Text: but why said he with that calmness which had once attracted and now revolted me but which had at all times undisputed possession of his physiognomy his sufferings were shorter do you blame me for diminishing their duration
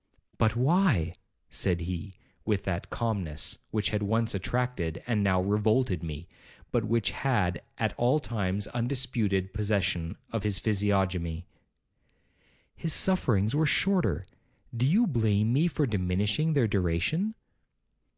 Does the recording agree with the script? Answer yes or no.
yes